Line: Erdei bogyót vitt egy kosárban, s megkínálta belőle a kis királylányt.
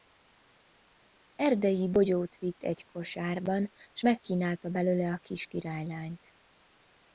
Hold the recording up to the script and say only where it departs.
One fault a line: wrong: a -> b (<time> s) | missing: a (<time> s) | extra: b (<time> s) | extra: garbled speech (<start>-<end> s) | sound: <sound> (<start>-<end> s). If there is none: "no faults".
no faults